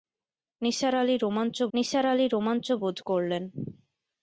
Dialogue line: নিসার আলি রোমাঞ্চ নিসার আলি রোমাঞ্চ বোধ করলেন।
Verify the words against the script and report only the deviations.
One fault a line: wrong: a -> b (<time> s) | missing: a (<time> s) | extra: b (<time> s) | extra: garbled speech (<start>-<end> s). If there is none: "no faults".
no faults